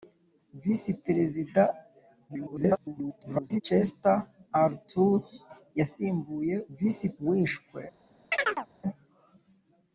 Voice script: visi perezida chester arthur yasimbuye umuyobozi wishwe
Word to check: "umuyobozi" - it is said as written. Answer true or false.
false